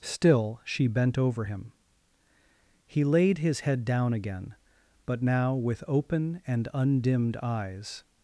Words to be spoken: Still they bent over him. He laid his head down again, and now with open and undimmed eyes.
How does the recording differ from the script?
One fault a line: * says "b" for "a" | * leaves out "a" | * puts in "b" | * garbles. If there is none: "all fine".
* says "she" for "they"
* says "but" for "and"